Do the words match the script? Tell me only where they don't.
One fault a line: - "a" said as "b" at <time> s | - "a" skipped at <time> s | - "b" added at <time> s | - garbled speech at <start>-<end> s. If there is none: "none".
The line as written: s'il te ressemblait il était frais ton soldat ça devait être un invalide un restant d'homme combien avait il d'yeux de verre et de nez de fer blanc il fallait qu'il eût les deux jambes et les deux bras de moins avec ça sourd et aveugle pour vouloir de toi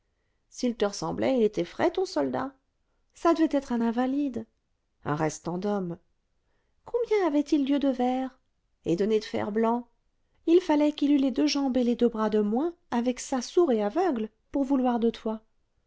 none